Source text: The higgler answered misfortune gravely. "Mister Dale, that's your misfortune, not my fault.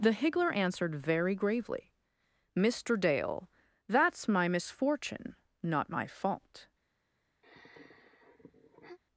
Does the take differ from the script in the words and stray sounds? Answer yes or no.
yes